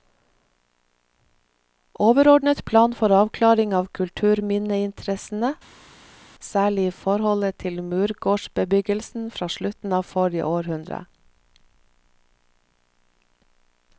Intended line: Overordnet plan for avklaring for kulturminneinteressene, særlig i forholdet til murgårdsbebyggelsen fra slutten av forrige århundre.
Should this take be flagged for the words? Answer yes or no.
yes